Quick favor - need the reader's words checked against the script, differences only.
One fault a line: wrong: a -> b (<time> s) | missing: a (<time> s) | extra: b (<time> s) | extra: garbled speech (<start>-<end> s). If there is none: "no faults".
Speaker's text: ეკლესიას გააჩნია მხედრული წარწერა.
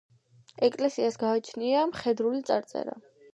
no faults